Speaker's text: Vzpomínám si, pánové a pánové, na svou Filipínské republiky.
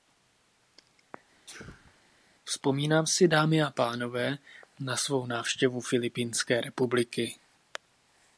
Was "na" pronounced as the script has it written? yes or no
yes